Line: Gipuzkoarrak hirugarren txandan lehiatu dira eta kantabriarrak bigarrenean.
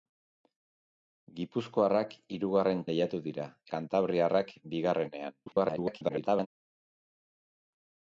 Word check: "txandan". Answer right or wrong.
wrong